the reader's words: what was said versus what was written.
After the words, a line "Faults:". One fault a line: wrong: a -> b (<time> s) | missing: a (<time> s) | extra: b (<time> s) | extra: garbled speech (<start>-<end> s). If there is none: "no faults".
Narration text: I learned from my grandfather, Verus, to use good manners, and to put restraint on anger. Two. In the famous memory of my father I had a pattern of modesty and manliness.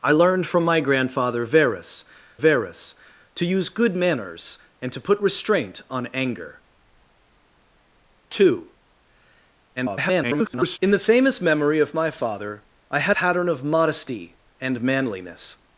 I learned from my grandfather, Verus Verus, to use good manners, and to put restraint on anger. Two. [garbled] In the famous memory of my father I had pattern of modesty and manliness.
Faults:
extra: Verus (2.4 s)
extra: garbled speech (9.8-10.8 s)
missing: a (13.2 s)